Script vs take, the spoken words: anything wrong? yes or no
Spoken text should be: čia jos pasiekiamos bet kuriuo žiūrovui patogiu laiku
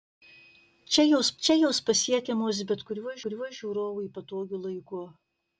yes